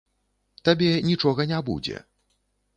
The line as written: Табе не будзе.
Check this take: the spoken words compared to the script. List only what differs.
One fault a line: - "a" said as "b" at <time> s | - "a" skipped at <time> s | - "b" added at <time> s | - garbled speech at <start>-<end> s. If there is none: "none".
- "нічога" added at 1.1 s